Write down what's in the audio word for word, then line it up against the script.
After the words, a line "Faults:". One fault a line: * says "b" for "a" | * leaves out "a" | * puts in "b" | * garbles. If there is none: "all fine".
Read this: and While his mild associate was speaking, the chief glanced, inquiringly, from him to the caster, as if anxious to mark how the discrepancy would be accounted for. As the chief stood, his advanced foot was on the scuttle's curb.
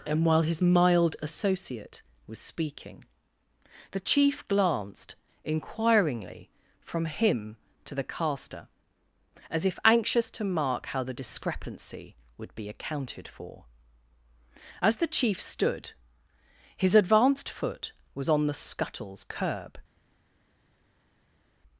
and While his mild associate was speaking, the chief glanced, inquiringly, from him to the caster, as if anxious to mark how the discrepancy would be accounted for. As the chief stood, his advanced foot was on the scuttle's curb.
Faults:
all fine